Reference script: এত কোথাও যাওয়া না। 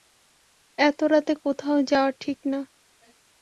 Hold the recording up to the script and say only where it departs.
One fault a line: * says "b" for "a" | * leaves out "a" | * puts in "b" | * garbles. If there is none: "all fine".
* puts in "রাতে"
* puts in "ঠিক"